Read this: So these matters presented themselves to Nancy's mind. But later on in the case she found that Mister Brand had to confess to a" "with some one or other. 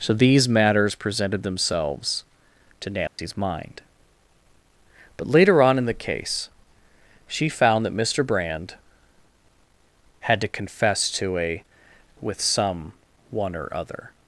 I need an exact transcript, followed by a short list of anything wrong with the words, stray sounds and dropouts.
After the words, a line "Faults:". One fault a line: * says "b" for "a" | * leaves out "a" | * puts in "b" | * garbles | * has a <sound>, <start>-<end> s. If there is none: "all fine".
So these matters presented themselves to Nancy's mind. But later on in the case she found that Mister Brand had to confess to a" "with some one or other.
Faults:
* has a dropout, 3.1-3.2 s